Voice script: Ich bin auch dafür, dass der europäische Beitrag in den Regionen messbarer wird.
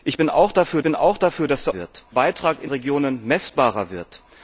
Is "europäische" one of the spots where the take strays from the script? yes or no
yes